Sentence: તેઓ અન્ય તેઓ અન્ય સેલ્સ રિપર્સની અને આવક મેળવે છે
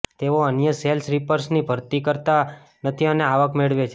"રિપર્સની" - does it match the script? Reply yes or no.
no